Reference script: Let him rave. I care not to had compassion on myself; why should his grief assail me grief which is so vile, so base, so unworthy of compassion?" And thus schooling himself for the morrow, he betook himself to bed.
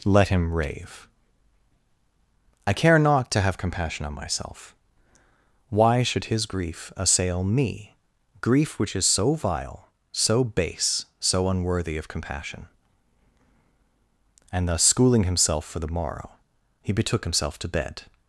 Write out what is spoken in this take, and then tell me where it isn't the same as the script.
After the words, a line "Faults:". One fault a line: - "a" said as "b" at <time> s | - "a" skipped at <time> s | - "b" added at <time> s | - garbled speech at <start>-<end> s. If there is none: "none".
Let him rave. I care not to have compassion on myself; why should his grief assail me grief which is so vile, so base, so unworthy of compassion?" And thus schooling himself for the morrow, he betook himself to bed.
Faults:
- "had" said as "have" at 3.4 s